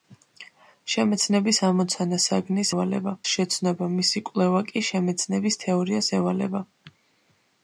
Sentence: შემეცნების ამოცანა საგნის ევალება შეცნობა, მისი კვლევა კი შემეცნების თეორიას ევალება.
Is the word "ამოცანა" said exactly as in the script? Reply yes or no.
yes